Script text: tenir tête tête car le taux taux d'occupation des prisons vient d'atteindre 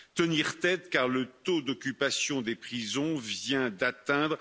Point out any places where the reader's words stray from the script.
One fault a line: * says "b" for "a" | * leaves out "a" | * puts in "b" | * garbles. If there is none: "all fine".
* leaves out "tête"
* leaves out "taux"